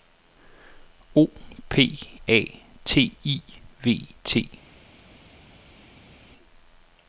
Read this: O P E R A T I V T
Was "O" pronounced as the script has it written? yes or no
yes